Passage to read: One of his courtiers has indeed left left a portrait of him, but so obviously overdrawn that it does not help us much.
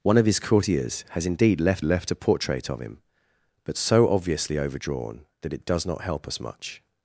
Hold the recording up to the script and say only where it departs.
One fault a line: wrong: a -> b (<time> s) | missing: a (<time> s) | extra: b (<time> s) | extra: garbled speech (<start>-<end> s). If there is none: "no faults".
no faults